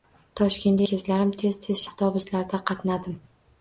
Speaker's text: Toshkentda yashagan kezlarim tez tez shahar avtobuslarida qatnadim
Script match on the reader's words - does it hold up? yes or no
no